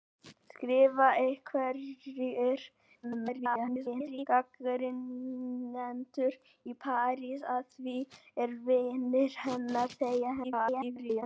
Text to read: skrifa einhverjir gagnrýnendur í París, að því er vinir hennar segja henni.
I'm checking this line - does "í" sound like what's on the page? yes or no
yes